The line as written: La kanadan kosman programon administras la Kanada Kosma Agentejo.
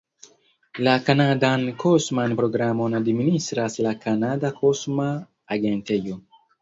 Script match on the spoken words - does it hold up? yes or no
yes